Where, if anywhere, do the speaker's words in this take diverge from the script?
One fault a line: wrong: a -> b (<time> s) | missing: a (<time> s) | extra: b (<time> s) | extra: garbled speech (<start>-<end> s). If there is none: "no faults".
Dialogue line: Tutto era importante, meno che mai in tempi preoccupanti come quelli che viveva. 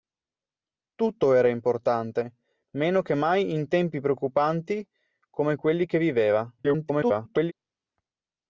extra: garbled speech (6.6-7.5 s)